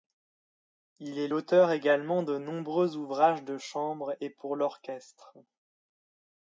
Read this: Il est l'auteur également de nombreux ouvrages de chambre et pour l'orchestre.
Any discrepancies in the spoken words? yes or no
no